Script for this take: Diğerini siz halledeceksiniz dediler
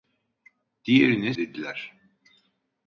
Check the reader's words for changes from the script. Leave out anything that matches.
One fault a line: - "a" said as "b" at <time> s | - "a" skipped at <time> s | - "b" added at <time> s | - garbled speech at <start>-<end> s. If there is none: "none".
- "siz halledeceksiniz" skipped at 1.3 s